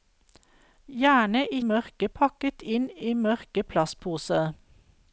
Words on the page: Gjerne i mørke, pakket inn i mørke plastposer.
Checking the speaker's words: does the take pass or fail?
pass